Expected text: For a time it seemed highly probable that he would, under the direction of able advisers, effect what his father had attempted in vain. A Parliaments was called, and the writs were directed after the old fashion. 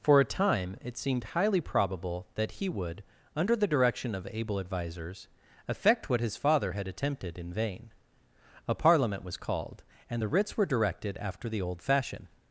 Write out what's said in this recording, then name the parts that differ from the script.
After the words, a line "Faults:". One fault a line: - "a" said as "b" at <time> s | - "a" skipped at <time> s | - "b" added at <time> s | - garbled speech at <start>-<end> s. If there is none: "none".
For a time it seemed highly probable that he would, under the direction of able advisers, effect what his father had attempted in vain. A Parliament was called, and the writs were directed after the old fashion.
Faults:
- "Parliaments" said as "Parliament" at 8.7 s